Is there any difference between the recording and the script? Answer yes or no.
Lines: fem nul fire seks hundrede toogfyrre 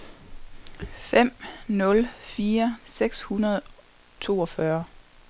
no